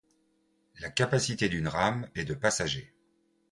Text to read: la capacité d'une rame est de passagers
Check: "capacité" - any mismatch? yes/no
no